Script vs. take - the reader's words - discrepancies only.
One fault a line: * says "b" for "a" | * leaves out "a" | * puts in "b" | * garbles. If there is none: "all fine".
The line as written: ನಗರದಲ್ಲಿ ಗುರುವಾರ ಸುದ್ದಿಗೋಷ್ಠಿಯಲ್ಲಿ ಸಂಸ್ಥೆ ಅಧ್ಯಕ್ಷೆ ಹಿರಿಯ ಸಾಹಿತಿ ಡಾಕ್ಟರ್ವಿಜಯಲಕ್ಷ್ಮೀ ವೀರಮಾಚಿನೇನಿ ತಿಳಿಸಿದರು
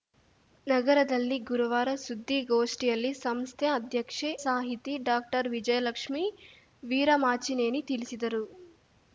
* leaves out "ಹಿರಿಯ"